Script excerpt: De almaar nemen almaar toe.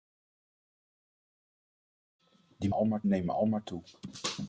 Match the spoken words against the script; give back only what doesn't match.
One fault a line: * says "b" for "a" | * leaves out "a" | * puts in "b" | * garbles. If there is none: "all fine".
all fine